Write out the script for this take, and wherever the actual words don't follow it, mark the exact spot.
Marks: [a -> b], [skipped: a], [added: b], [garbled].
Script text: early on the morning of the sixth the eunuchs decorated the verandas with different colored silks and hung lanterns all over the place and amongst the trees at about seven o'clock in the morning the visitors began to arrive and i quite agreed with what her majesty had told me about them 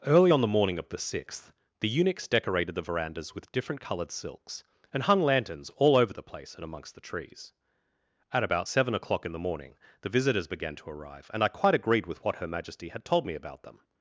early on the morning of the sixth the eunuchs decorated the verandas with different colored silks and hung lanterns all over the place and amongst the trees at about seven o'clock in the morning the visitors began to arrive and i quite agreed with what her majesty had told me about them